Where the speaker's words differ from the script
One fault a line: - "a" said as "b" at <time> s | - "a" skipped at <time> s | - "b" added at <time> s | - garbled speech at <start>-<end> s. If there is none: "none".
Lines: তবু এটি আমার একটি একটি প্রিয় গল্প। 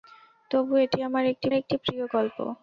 none